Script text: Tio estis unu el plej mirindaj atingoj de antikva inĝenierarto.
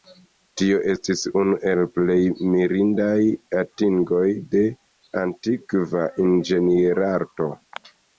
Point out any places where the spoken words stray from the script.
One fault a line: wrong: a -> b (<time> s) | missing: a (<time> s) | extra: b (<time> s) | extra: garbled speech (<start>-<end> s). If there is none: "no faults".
no faults